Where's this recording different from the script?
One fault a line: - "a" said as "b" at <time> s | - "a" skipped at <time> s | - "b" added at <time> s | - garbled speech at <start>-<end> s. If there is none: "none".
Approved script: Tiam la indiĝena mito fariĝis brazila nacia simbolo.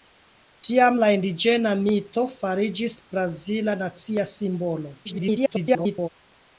- garbled speech at 5.0-6.1 s